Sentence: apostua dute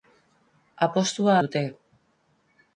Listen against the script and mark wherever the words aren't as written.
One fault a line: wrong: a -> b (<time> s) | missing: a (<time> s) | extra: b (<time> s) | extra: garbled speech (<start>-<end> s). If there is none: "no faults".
no faults